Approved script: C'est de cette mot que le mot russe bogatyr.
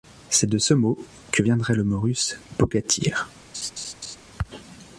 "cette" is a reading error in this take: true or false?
true